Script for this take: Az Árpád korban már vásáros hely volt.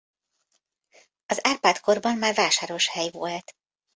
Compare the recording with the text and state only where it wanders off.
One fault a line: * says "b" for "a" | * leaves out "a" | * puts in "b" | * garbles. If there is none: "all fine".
all fine